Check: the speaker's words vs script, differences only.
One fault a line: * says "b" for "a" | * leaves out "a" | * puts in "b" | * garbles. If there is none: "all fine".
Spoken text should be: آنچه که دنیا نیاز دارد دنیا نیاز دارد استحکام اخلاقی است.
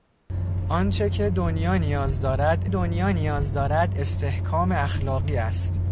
all fine